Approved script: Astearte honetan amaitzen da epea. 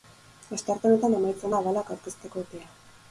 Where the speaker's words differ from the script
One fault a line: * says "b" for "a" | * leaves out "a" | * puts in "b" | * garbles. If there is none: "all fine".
* puts in "abalak aurkezteko"